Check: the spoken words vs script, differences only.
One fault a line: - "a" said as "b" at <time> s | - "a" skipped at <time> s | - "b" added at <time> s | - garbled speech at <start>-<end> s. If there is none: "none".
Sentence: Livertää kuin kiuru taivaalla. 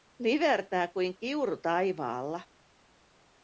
none